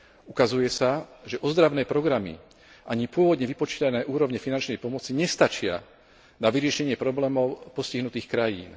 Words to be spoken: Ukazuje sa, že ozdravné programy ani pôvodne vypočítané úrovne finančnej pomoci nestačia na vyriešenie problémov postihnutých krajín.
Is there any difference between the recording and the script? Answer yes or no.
no